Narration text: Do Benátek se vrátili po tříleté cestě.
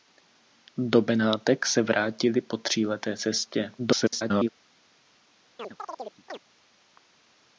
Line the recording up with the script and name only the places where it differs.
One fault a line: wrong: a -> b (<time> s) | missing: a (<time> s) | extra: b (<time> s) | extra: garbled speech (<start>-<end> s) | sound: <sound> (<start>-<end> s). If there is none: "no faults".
extra: garbled speech (3.8-4.5 s)
sound: chirp (5.6-6.4 s)